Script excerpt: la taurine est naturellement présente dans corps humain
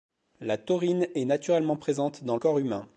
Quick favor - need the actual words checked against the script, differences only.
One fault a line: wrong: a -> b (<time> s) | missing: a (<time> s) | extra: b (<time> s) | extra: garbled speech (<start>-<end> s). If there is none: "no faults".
no faults